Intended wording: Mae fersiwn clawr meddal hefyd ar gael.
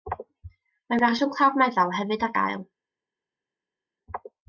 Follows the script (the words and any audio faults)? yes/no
yes